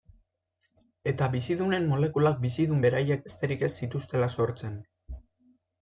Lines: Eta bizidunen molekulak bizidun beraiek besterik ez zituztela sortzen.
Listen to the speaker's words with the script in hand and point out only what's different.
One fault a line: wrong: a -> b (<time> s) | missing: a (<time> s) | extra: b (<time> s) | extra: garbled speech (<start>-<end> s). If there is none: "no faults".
no faults